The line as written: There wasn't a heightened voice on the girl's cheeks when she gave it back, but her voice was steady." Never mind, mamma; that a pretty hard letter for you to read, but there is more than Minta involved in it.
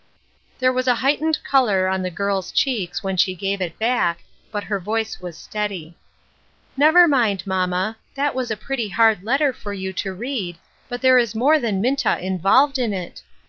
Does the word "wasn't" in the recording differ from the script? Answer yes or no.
yes